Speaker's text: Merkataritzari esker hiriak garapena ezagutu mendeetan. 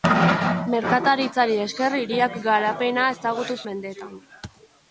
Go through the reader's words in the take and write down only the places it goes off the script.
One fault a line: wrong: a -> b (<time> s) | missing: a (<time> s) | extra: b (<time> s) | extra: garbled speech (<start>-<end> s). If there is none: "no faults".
no faults